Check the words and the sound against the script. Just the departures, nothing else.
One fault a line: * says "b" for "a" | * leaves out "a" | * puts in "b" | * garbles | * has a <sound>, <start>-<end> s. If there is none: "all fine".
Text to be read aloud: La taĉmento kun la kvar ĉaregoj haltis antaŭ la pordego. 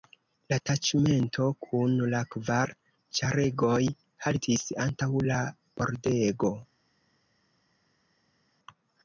all fine